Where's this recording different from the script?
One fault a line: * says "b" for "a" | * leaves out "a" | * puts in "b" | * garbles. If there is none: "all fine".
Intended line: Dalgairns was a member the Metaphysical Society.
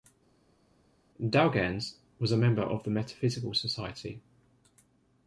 * puts in "of"